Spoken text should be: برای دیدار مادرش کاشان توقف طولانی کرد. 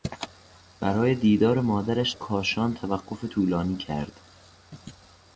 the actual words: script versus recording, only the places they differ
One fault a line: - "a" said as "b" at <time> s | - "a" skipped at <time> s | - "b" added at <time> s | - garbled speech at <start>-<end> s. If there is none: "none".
none